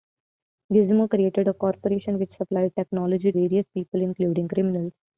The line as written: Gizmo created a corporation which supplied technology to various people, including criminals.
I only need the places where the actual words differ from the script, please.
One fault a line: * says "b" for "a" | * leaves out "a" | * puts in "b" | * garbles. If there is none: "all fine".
* leaves out "to"